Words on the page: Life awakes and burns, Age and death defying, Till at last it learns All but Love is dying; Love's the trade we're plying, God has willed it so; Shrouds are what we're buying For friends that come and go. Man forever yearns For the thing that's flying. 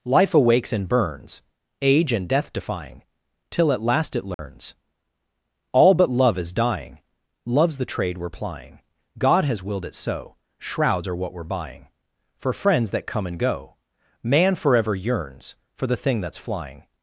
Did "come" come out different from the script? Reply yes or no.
no